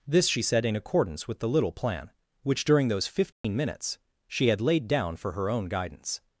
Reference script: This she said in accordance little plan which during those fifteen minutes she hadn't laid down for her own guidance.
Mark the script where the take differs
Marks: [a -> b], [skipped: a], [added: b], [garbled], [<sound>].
This she said in accordance [added: with the] little plan which during those fifteen [dropout] minutes she [hadn't -> had] laid down for her own guidance.